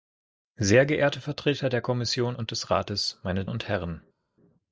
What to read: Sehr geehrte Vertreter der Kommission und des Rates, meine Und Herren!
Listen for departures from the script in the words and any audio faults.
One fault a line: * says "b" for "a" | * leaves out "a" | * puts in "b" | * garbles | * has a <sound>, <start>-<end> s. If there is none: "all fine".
all fine